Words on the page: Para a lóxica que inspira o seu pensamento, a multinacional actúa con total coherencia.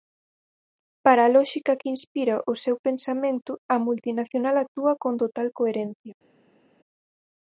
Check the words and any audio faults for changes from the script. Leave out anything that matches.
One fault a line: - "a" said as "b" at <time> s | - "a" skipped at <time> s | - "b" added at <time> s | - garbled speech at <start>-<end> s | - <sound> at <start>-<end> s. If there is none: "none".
none